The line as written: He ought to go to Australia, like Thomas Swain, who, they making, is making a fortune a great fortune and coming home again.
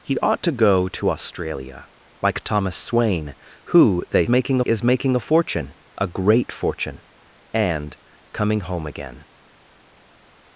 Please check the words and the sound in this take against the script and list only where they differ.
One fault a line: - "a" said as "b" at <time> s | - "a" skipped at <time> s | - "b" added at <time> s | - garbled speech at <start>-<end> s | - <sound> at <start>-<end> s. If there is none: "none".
none